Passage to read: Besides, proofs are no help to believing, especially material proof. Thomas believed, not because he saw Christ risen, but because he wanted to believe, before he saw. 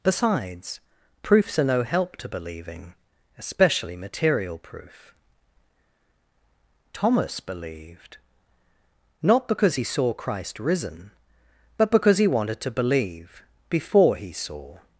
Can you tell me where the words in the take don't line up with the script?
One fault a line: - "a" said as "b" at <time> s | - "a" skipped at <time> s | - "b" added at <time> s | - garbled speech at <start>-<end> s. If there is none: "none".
none